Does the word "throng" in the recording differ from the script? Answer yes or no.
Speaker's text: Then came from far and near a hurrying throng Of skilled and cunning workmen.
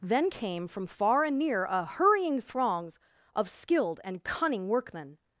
yes